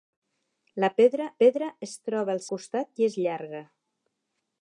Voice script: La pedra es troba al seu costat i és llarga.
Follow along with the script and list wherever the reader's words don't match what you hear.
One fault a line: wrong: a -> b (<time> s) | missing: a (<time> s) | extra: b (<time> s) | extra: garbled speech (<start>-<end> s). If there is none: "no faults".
extra: pedra (1.4 s)
missing: seu (2.4 s)